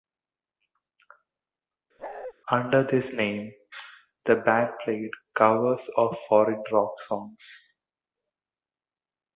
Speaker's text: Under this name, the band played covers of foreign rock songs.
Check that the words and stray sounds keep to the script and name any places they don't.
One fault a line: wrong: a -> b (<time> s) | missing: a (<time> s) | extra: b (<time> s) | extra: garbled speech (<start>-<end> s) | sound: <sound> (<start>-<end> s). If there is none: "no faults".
sound: bark (2.0-2.3 s)